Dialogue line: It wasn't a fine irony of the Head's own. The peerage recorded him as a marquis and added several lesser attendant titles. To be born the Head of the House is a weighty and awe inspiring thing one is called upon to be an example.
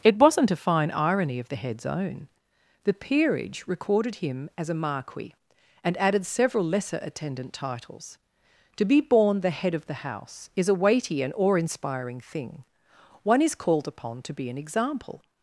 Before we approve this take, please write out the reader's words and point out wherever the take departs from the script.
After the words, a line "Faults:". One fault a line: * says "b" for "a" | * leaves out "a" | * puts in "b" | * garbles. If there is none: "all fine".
It wasn't a fine irony of the Head's own. The peerage recorded him as a marquis and added several lesser attendant titles. To be born the Head of the House is a weighty and awe inspiring thing one is called upon to be an example.
Faults:
all fine